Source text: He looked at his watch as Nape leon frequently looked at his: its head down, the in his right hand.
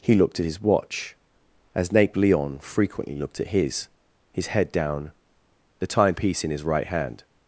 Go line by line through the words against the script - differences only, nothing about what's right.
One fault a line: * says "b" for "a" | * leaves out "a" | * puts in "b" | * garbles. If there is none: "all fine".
* says "his" for "its"
* puts in "timepiece"